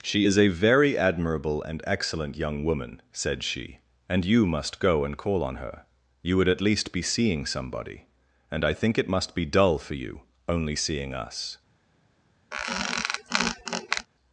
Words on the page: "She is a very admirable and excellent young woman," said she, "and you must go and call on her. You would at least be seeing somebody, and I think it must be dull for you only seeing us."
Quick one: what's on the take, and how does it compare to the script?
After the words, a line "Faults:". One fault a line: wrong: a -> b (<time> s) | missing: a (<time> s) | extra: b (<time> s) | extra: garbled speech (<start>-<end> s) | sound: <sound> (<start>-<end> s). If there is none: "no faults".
"She is a very admirable and excellent young woman," said she, "and you must go and call on her. You would at least be seeing somebody, and I think it must be dull for you only seeing us."
Faults:
sound: squeak (12.5-14.1 s)